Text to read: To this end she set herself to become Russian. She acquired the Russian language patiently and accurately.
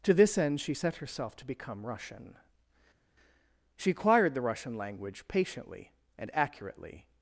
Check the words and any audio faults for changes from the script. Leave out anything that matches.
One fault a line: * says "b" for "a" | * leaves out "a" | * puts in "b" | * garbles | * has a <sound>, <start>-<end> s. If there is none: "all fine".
all fine